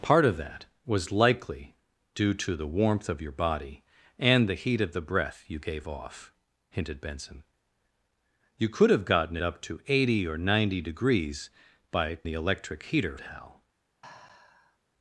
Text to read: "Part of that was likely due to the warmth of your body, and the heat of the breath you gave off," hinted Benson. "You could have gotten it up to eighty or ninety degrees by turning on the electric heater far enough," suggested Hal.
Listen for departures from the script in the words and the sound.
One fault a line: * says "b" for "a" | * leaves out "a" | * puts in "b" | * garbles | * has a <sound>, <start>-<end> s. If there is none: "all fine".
* leaves out "it"
* leaves out "turning on"
* leaves out "far enough suggested"
* has a sigh, 14.0-14.8 s